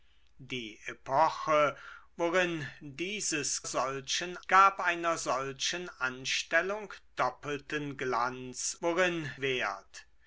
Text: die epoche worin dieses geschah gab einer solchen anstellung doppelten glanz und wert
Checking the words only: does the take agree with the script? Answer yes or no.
no